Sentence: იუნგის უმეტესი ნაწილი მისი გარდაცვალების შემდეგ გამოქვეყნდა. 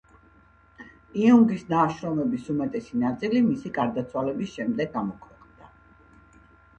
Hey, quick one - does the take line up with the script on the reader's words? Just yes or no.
no